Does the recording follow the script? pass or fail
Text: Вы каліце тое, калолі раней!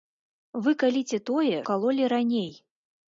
pass